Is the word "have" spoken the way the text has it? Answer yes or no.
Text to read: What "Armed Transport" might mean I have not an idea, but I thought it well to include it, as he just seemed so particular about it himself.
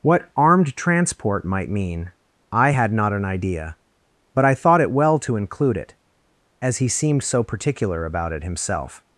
no